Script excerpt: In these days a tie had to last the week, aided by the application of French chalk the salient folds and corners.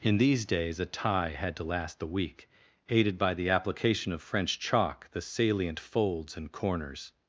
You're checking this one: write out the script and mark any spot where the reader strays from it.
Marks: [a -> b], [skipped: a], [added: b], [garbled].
In these days a tie had to last the week, aided by the application of French chalk the salient folds and corners.